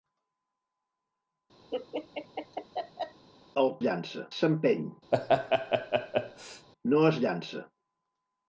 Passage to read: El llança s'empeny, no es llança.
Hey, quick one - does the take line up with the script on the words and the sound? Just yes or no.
no